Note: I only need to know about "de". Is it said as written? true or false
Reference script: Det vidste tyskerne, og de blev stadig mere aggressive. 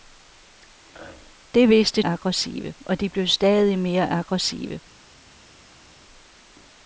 true